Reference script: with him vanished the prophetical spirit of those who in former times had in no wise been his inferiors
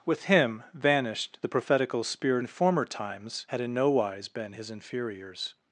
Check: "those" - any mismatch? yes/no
yes